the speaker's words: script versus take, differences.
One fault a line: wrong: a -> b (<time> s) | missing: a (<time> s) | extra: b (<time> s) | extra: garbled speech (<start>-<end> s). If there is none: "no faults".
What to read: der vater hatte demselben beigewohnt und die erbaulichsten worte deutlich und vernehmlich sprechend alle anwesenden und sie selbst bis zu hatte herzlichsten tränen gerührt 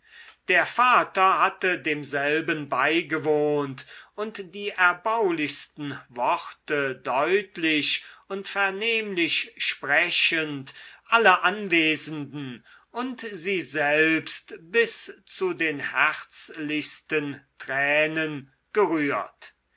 wrong: hatte -> den (15.5 s)